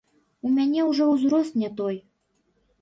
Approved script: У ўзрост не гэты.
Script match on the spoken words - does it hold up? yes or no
no